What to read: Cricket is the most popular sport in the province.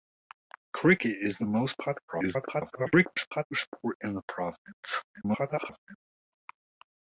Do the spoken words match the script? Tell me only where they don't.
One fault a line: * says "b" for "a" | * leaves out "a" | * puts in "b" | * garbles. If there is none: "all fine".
* garbles
* garbles